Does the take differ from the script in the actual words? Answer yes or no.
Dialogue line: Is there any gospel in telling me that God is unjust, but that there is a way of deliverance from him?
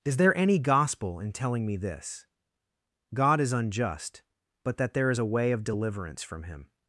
yes